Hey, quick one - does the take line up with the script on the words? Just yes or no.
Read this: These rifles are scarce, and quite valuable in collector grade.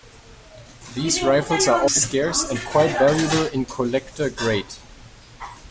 yes